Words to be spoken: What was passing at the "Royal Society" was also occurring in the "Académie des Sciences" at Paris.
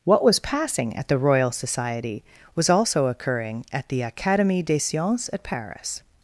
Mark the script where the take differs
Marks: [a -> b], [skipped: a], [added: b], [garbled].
What was passing at the "Royal Society" was also occurring [in -> at] the "Académie des Sciences" at Paris.